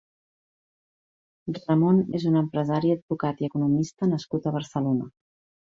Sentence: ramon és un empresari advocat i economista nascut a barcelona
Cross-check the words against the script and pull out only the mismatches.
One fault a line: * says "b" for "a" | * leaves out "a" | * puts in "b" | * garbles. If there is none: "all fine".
all fine